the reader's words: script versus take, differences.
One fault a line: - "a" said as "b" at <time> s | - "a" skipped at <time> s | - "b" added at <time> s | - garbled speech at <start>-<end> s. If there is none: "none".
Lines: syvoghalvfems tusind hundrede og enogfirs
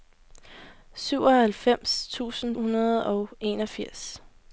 none